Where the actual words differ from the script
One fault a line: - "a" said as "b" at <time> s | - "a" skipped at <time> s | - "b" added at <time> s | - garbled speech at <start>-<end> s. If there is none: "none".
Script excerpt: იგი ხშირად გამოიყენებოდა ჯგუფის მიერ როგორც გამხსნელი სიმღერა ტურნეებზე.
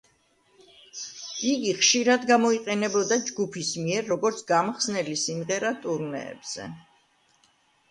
none